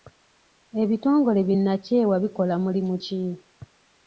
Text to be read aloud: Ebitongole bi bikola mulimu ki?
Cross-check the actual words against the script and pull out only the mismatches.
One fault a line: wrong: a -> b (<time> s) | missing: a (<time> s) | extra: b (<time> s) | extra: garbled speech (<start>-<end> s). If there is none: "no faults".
extra: nnakyewa (1.6 s)